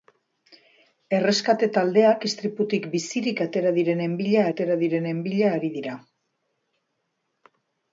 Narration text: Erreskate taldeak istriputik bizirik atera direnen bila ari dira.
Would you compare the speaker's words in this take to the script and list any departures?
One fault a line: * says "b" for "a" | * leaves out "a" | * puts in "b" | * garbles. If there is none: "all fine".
* puts in "atera direnen bila"